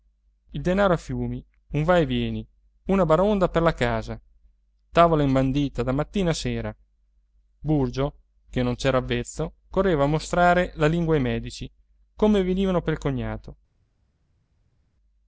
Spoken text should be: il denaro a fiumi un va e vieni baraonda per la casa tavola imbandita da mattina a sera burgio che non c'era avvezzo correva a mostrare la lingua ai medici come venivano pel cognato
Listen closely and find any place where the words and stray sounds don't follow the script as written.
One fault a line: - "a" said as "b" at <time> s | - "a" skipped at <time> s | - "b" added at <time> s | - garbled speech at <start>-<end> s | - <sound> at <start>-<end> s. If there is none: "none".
- "una" added at 2.9 s